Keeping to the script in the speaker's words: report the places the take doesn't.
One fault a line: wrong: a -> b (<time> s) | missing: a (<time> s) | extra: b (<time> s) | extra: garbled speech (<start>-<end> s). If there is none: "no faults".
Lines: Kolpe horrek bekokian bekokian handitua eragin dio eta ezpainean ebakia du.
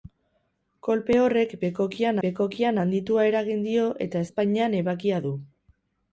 no faults